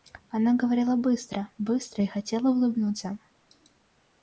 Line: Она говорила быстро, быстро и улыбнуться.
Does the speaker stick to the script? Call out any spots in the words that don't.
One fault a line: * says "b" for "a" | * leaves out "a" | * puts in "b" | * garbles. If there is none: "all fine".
* puts in "хотела"